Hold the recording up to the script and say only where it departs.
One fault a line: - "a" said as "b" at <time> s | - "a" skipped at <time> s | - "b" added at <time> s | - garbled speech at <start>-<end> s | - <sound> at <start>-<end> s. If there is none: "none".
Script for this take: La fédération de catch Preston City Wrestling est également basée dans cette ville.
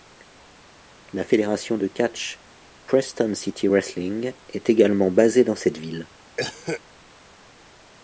- cough at 6.4-6.8 s